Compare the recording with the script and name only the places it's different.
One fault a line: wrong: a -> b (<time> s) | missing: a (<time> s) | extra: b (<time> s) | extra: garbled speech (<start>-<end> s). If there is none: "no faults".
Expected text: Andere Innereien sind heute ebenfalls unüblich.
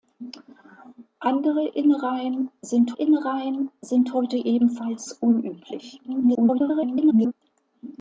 extra: Innereien sind (2.9 s)
extra: garbled speech (6.1-7.3 s)